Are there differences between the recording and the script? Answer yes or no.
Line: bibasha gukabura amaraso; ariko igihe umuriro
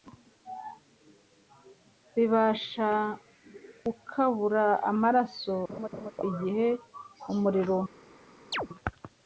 yes